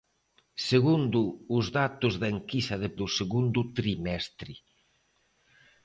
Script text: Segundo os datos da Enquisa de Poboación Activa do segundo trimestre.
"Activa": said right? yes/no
no